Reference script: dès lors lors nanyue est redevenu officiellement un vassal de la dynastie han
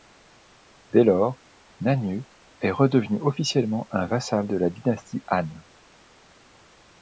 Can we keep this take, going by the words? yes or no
no